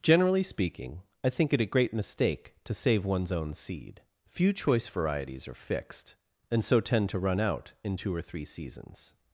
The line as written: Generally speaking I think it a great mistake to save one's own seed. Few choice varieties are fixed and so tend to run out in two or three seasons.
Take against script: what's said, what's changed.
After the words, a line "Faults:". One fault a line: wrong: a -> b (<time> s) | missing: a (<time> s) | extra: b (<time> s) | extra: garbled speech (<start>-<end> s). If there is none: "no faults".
Generally speaking I think it a great mistake to save one's own seed. Few choice varieties are fixed and so tend to run out in two or three seasons.
Faults:
no faults